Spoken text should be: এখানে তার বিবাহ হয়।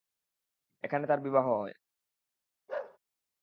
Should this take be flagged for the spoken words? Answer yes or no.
no